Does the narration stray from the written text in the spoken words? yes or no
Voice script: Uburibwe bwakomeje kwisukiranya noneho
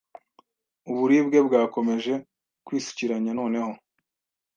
no